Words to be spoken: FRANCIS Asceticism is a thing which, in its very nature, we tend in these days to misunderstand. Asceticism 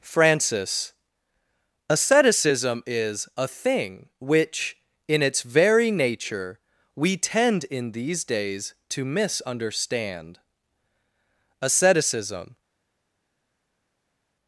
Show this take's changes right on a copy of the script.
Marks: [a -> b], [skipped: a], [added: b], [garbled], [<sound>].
FRANCIS Asceticism is a thing which, in its very nature, we tend in these days to misunderstand. Asceticism